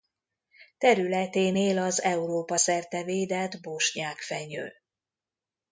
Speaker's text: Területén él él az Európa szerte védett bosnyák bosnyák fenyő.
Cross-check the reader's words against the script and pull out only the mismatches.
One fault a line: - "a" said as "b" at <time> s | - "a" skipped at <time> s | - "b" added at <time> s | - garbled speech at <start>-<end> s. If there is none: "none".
- "él" skipped at 1.8 s
- "bosnyák" skipped at 4.2 s